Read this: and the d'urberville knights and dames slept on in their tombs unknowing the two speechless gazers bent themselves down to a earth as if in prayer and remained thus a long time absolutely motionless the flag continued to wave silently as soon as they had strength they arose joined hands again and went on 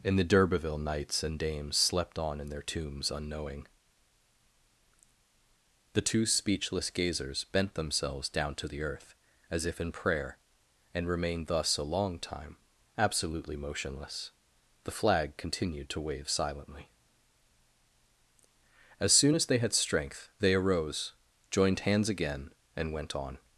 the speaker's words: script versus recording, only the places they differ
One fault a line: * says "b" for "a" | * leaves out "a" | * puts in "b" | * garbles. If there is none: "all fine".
* says "the" for "a"